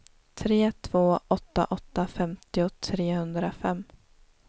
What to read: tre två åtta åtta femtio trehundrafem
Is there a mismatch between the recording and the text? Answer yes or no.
no